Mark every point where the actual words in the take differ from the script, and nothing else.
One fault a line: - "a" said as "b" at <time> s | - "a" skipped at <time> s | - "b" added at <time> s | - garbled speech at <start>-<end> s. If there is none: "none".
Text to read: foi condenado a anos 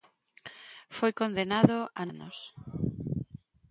none